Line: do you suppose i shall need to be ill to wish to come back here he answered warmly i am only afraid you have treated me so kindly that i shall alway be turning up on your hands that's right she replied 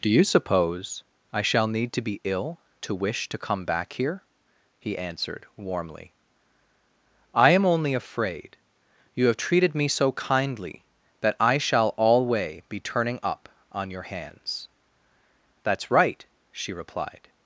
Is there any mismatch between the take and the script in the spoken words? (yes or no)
no